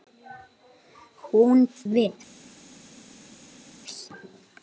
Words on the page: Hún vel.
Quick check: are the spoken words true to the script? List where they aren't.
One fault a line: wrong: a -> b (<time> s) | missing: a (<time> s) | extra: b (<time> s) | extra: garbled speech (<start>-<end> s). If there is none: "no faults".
no faults